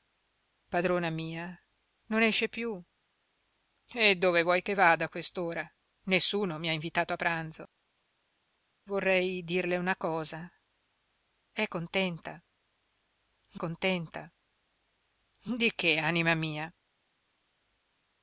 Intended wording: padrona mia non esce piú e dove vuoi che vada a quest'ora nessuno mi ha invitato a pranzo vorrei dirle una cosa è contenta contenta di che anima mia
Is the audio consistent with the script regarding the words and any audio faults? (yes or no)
yes